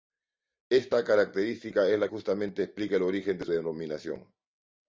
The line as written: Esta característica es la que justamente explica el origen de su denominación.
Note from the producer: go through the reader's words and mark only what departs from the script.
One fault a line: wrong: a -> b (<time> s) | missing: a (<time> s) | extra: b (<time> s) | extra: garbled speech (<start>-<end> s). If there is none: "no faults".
missing: que (2.1 s)
missing: su (3.5 s)